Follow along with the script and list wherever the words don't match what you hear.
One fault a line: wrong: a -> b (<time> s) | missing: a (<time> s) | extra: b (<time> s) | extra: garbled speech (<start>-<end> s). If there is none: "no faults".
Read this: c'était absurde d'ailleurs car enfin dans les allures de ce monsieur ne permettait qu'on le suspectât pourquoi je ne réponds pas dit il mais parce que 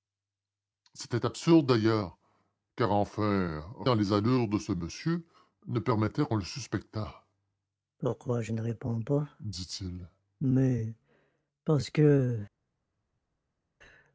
no faults